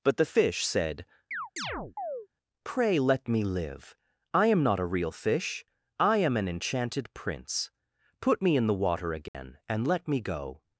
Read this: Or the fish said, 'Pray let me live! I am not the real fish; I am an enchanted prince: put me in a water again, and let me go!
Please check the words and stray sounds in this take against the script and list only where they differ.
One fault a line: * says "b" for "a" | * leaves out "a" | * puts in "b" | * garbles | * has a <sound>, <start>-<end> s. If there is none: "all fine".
* says "But" for "Or"
* has a chirp, 1.3-2.3 s
* says "a" for "the"
* says "the" for "a"
* has a dropout, 9.3-9.3 s